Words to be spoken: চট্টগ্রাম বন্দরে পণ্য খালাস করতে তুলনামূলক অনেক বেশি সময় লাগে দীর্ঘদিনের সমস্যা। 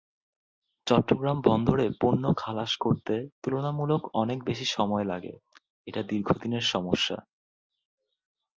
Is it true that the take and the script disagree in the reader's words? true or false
true